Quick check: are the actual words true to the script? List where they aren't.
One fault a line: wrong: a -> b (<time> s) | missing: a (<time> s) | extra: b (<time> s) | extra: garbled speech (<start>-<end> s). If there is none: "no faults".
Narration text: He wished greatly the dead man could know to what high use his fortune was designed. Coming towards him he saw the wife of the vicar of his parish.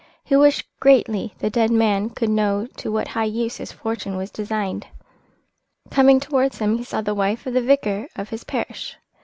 no faults